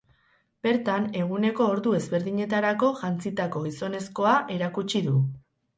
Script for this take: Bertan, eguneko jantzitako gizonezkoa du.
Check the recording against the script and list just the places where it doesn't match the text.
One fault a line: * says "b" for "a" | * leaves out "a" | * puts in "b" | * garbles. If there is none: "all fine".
* puts in "ordu ezberdinetarako"
* puts in "erakutsi"